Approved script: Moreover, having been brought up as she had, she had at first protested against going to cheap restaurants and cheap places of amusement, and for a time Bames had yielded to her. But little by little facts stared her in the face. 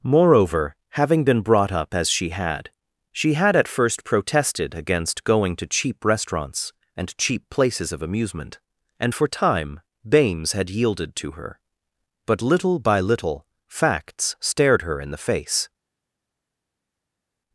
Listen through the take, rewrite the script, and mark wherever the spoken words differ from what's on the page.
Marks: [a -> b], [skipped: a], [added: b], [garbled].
Moreover, having been brought up as she had, she had at first protested against going to cheap restaurants and cheap places of amusement, and for [skipped: a] time Bames had yielded to her. But little by little facts stared her in the face.